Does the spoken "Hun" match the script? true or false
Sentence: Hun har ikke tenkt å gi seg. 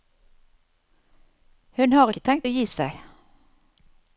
true